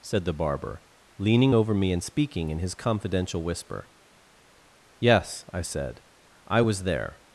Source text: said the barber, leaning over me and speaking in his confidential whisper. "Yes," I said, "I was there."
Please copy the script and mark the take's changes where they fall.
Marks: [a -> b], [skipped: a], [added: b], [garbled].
said the barber, leaning over me and speaking in his confidential whisper. "Yes," I said, "I was there."